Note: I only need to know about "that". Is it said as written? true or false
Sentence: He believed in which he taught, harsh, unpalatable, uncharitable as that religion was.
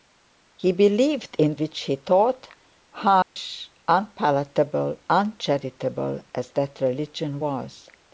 true